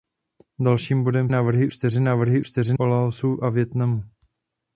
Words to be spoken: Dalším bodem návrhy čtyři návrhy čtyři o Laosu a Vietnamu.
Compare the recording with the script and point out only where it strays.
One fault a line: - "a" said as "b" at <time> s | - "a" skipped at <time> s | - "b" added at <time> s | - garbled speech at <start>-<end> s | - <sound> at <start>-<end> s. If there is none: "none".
none